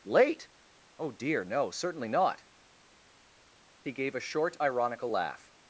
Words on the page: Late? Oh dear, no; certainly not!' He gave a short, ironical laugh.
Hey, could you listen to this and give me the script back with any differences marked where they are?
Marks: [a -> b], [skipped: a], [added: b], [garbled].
Late? Oh dear, no; certainly not!' He gave a short, ironical laugh.